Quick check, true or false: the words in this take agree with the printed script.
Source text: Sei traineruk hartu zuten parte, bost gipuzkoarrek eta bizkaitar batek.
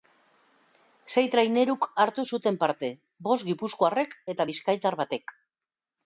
true